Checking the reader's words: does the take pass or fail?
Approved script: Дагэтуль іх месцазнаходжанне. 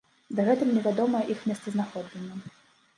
fail